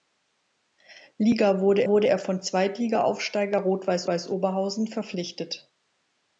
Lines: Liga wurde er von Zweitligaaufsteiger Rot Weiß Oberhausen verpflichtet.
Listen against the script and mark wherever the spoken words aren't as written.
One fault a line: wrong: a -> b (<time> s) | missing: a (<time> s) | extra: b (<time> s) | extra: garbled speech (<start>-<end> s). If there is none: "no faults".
extra: wurde (1.9 s)
extra: Weiß (4.1 s)